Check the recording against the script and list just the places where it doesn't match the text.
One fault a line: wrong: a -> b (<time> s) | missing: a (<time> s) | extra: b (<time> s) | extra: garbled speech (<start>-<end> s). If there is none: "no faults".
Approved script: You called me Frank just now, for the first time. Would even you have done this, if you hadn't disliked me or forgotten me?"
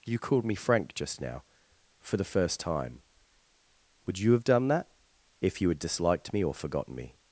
missing: even (4.2 s)
wrong: this -> that (4.7 s)
wrong: hadn't -> had (5.7 s)